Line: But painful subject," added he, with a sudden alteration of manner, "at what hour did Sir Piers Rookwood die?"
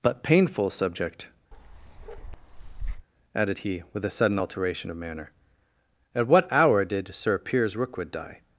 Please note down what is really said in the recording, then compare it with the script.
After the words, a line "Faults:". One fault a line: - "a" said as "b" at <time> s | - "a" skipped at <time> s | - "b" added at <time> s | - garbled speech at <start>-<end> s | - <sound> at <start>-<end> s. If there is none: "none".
But painful subject," added he, with a sudden alteration of manner, "at what hour did Sir Piers Rookwood die?"
Faults:
- bark at 1.5-3.1 s